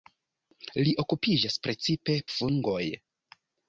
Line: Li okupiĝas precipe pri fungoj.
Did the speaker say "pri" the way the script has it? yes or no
no